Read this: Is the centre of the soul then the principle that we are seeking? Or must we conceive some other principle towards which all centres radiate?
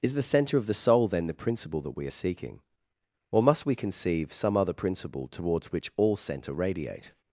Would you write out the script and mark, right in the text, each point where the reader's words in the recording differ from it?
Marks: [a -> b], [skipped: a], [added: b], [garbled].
Is the centre of the soul then the principle that we are seeking? Or must we conceive some other principle towards which all [centres -> centre] radiate?